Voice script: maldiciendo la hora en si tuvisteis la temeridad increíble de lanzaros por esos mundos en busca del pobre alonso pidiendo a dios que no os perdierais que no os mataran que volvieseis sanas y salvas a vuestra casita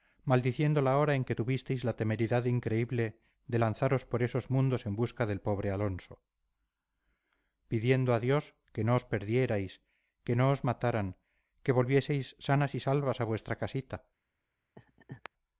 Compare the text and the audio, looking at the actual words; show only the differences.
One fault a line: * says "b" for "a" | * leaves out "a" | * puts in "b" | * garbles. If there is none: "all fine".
* says "que" for "si"